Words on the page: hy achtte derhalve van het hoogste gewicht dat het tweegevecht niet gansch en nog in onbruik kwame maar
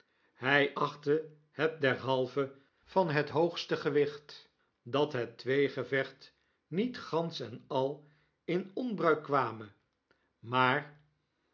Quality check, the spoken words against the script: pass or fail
fail